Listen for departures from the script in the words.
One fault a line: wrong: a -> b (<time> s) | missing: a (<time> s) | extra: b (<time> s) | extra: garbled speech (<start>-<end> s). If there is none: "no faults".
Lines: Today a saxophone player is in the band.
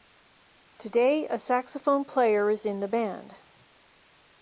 no faults